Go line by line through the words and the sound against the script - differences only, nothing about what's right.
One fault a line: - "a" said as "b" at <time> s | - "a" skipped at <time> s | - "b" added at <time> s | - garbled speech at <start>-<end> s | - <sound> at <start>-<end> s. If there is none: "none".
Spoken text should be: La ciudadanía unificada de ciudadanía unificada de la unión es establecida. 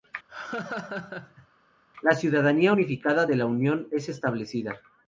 - laugh at 0.3-1.5 s
- "ciudadanía unificada de" skipped at 3.4 s